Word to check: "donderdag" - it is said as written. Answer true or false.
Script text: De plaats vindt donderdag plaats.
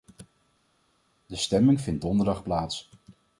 true